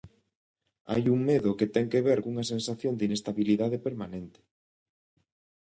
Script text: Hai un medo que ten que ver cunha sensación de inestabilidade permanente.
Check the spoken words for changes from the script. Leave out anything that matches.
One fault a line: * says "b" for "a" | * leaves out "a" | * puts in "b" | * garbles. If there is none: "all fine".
all fine